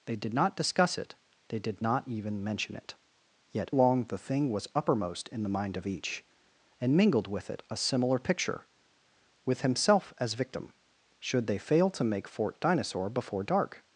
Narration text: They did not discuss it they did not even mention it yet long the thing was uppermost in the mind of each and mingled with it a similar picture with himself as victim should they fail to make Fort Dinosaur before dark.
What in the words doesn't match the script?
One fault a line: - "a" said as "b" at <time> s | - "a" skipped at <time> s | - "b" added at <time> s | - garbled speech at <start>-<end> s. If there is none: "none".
none